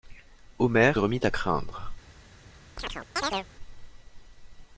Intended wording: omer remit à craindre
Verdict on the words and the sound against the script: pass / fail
fail